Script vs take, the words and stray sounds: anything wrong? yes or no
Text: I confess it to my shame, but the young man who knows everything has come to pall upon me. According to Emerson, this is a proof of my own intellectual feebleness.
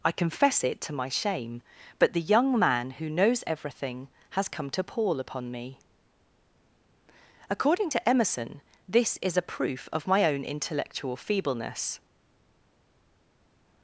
no